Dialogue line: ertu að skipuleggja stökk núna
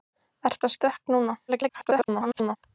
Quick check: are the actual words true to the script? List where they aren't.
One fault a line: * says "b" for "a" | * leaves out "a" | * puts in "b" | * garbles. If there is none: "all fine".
* leaves out "skipuleggja"
* garbles